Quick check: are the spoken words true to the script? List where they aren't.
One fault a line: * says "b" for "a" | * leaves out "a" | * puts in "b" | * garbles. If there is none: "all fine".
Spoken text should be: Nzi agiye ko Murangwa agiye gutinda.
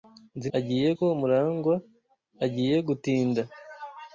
all fine